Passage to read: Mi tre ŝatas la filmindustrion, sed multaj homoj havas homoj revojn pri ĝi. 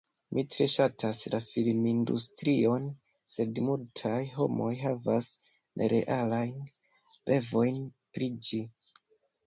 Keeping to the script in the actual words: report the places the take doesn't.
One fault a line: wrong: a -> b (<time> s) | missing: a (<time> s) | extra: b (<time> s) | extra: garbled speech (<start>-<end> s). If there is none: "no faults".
wrong: homoj -> nerealajn (5.8 s)